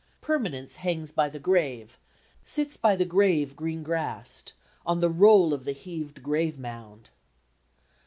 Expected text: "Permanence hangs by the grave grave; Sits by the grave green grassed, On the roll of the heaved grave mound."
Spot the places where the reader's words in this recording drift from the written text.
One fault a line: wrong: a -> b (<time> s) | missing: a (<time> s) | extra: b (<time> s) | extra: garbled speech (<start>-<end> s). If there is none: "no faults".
missing: grave (2.0 s)